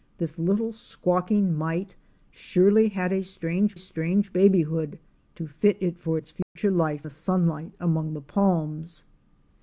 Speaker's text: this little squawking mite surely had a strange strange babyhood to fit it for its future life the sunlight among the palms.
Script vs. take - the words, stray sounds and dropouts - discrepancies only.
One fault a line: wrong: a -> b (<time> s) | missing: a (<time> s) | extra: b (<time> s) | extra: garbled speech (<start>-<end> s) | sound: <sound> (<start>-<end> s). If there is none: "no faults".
sound: dropout (6.4-6.6 s)